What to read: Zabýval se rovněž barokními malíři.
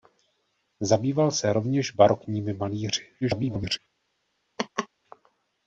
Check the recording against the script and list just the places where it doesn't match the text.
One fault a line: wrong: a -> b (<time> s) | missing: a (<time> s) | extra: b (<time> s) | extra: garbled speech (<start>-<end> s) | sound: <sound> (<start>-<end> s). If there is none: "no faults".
extra: garbled speech (3.2-3.8 s)
sound: laugh (4.6-4.9 s)